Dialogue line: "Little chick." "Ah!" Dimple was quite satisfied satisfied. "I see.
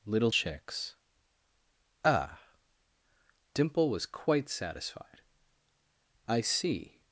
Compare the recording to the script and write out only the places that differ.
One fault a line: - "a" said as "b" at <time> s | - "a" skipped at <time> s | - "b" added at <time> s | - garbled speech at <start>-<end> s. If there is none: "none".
- "chick" said as "chicks" at 0.3 s
- "satisfied" skipped at 5.2 s